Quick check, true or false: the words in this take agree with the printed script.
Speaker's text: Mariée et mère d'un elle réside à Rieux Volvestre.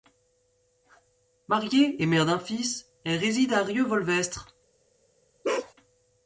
false